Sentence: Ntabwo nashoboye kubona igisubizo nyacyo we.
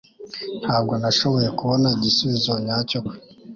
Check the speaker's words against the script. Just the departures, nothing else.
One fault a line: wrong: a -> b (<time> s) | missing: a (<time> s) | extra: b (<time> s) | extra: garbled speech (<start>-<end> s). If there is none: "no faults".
no faults